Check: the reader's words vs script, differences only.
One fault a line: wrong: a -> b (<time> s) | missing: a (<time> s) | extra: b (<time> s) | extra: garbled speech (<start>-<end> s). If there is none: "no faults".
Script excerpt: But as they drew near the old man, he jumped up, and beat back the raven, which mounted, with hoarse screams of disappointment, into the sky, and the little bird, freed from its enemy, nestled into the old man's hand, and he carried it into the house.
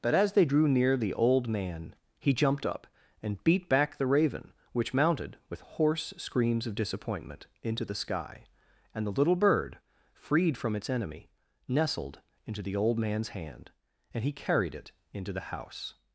no faults